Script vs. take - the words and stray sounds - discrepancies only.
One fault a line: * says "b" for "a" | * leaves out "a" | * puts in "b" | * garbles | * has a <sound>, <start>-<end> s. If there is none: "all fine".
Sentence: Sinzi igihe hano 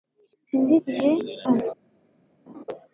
* has a laugh, 2.5-2.6 s